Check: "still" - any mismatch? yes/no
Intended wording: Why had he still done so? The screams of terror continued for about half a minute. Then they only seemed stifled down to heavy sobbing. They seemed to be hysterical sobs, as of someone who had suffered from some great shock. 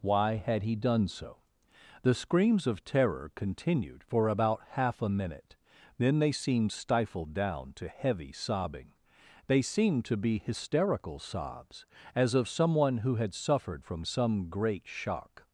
yes